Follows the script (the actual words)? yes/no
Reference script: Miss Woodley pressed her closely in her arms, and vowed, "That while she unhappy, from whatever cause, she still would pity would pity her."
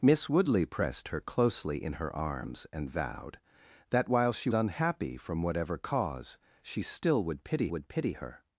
yes